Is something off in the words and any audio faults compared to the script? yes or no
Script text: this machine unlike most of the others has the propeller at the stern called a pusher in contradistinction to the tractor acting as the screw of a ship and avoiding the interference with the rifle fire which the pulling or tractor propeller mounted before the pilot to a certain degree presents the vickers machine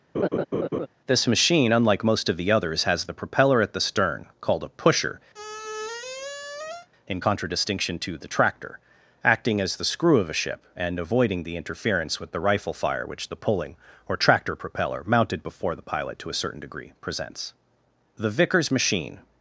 yes